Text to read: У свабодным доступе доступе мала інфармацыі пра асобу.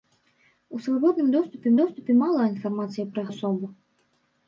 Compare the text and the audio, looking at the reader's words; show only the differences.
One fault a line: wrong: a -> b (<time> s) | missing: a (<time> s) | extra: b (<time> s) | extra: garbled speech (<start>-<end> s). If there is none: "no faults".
no faults